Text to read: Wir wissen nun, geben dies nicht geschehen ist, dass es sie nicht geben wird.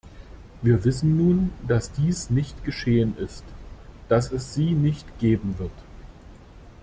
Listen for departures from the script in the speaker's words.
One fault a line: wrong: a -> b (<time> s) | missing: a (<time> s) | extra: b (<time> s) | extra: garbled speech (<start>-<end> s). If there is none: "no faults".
wrong: geben -> dass (1.7 s)